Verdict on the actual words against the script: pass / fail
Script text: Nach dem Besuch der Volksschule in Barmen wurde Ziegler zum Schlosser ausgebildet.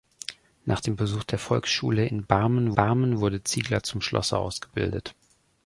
fail